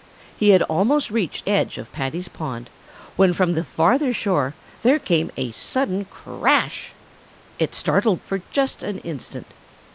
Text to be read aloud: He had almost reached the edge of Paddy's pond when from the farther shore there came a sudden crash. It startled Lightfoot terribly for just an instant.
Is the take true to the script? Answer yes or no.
no